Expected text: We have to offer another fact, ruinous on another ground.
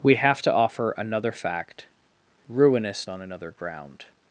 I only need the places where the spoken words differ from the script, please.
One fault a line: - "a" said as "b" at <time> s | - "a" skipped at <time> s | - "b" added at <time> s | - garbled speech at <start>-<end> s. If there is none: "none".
none